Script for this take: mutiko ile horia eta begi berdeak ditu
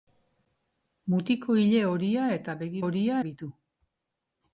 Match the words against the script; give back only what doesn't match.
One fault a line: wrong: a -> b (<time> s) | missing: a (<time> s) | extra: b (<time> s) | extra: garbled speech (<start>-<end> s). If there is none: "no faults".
wrong: berdeak -> horia (2.8 s)